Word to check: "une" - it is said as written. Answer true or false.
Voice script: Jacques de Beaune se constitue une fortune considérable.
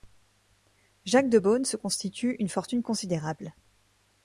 true